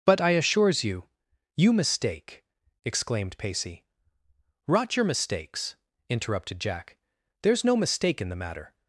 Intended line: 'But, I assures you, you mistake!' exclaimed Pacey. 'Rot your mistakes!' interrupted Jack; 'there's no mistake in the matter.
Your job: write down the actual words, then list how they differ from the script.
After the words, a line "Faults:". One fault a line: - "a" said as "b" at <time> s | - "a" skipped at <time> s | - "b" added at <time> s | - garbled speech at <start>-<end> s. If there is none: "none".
'But, I assures you, you mistake!' exclaimed Pacey. 'Rot your mistakes!' interrupted Jack; 'there's no mistake in the matter.
Faults:
none